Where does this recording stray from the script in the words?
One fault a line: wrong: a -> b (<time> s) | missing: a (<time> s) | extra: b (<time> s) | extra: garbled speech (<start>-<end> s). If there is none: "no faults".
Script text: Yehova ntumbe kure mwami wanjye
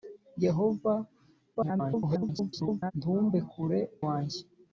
extra: garbled speech (1.5-2.9 s)
missing: mwami (3.8 s)